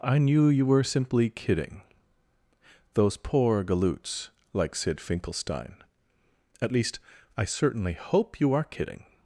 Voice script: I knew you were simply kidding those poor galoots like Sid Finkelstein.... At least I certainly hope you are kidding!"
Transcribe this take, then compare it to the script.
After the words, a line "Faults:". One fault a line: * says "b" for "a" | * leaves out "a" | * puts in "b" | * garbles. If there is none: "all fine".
I knew you were simply kidding those poor galoots like Sid Finkelstein.... At least I certainly hope you are kidding!"
Faults:
all fine